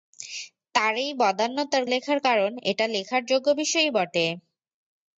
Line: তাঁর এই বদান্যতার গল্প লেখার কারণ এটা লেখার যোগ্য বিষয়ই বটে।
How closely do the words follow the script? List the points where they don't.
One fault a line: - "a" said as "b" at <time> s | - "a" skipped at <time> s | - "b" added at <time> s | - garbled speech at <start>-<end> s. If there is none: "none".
- "গল্প" skipped at 1.8 s